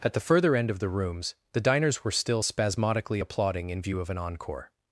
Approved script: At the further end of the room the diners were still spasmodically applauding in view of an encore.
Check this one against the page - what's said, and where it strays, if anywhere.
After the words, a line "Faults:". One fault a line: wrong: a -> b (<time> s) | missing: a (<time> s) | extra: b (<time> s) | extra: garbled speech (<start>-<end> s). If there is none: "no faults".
At the further end of the rooms the diners were still spasmodically applauding in view of an encore.
Faults:
wrong: room -> rooms (0.9 s)